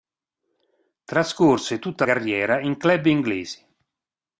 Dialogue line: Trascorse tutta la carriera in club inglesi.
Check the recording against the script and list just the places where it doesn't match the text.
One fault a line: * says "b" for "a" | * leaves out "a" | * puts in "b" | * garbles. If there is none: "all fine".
* leaves out "la"